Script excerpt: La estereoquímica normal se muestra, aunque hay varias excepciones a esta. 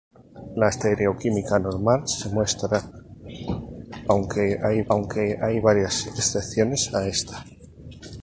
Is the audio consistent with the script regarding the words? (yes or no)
no